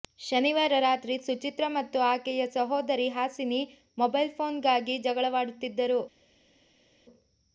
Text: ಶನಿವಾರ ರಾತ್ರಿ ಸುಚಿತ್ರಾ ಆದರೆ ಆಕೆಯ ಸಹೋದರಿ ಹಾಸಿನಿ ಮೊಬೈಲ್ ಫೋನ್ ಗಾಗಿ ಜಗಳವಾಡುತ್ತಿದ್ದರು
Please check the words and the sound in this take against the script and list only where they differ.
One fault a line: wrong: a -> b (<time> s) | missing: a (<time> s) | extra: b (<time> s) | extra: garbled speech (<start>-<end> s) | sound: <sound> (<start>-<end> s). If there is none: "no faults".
wrong: ಆದರೆ -> ಮತ್ತು (1.7 s)